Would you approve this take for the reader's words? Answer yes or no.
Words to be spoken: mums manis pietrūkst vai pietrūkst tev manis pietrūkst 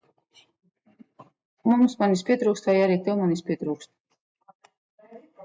no